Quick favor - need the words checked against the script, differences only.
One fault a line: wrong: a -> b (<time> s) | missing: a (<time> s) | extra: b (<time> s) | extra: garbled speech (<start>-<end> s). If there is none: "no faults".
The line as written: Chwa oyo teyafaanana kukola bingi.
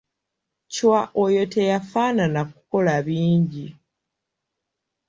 no faults